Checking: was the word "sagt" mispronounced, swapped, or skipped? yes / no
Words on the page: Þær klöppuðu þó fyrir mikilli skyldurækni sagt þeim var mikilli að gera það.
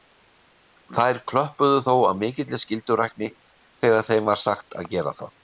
yes